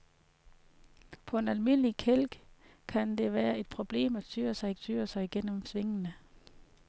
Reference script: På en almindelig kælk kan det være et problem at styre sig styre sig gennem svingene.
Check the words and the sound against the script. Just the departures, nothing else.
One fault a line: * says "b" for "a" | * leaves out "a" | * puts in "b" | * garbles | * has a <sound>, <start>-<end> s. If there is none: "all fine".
all fine